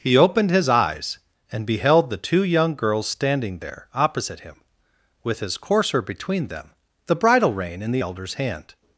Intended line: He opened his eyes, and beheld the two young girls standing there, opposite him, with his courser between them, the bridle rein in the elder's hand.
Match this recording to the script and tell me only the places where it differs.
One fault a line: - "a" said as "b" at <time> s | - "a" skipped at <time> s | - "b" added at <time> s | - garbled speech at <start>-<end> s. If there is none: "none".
none